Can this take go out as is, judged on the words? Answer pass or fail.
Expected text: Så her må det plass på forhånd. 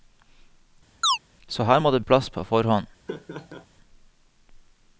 pass